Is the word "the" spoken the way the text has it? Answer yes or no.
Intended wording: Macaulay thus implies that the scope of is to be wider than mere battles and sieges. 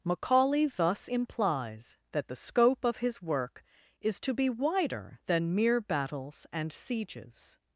yes